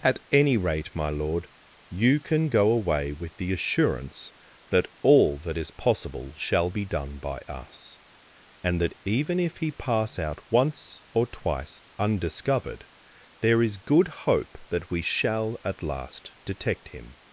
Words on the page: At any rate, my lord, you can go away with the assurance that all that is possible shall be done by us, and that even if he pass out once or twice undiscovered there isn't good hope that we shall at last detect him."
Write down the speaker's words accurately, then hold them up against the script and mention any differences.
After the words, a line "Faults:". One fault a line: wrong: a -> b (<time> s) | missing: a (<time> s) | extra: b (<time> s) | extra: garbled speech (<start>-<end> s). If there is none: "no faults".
At any rate, my lord, you can go away with the assurance that all that is possible shall be done by us, and that even if he pass out once or twice undiscovered there is good hope that we shall at last detect him."
Faults:
wrong: isn't -> is (13.6 s)